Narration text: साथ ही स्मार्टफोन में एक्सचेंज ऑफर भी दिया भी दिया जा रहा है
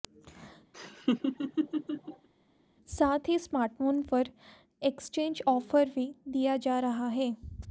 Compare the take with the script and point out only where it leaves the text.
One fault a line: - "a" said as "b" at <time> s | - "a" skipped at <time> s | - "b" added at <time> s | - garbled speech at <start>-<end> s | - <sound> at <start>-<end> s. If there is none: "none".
- laugh at 0.7-2.3 s
- "में" said as "पर" at 4.0 s
- "भी दिया" skipped at 6.6 s